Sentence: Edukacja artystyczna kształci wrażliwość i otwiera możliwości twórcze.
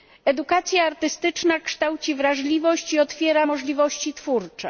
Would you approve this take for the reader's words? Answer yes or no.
yes